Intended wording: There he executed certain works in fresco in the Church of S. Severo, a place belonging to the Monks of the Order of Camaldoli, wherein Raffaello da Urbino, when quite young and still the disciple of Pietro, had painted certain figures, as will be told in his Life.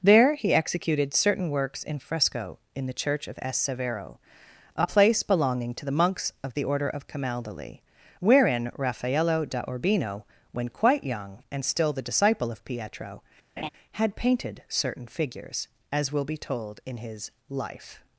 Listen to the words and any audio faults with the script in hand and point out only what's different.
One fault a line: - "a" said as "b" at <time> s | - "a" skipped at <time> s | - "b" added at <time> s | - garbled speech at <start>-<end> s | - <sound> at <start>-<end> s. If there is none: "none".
- laugh at 13.6-13.7 s